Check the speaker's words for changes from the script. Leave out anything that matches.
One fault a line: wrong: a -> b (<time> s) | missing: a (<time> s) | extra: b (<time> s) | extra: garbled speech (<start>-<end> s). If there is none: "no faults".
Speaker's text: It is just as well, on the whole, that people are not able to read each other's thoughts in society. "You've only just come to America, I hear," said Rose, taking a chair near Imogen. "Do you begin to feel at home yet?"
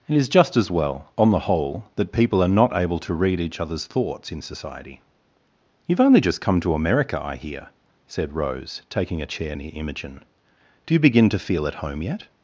no faults